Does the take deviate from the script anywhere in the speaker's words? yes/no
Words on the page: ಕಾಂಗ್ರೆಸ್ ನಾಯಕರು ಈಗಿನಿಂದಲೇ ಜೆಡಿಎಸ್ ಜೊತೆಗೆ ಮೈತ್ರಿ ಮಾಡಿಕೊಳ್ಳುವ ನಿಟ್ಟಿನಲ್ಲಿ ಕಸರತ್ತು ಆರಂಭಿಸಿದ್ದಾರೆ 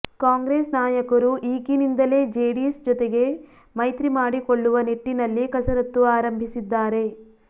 no